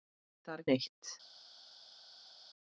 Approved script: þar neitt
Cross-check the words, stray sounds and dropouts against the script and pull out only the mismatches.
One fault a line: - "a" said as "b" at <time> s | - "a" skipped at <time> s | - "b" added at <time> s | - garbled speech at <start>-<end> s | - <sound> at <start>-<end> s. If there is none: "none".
none